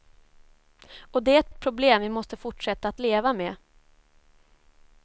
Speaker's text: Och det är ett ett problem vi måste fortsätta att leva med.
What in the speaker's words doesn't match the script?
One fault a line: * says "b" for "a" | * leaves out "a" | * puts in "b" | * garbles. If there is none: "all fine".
all fine